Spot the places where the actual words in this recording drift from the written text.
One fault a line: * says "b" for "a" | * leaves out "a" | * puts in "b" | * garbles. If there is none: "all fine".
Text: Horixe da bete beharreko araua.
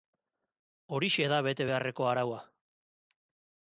all fine